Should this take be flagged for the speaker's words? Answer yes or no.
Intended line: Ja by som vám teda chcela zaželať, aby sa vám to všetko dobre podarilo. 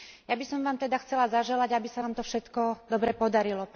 no